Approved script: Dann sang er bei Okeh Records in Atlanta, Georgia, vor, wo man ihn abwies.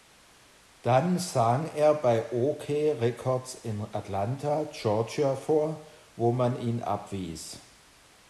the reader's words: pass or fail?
pass